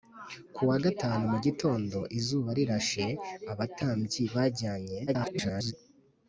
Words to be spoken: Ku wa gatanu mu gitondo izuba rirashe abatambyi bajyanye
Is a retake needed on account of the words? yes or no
yes